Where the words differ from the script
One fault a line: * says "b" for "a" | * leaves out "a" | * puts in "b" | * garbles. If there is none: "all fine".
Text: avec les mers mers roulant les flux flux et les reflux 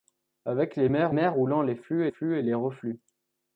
all fine